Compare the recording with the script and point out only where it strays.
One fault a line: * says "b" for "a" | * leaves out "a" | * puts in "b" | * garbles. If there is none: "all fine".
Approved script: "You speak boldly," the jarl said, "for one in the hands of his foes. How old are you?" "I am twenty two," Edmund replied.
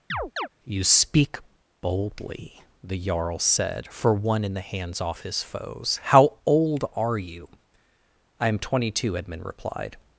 * says "off" for "of"